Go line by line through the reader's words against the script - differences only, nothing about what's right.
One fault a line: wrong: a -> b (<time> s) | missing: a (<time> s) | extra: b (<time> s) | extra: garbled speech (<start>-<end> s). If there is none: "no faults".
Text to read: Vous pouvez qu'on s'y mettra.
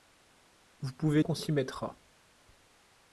no faults